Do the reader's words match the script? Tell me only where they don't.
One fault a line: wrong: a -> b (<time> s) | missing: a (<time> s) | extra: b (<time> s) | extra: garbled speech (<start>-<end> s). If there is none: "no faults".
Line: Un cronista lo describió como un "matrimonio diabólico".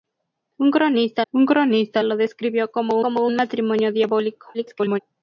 extra: un cronista (1.3 s)
extra: como (3.0 s)
extra: garbled speech (4.5-5.0 s)